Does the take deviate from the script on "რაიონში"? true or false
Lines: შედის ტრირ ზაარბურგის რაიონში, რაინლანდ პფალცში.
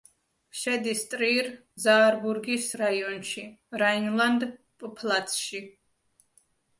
false